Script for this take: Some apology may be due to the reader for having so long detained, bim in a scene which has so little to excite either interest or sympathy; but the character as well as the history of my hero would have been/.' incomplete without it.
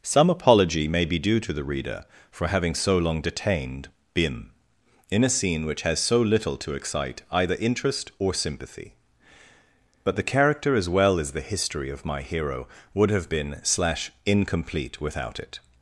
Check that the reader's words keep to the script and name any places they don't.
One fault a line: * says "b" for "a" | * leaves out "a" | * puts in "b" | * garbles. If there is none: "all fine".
* puts in "slash"